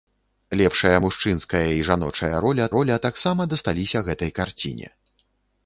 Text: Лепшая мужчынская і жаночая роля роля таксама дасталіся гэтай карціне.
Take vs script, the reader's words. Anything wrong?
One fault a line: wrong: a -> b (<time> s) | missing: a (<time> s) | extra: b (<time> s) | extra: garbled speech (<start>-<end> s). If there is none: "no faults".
no faults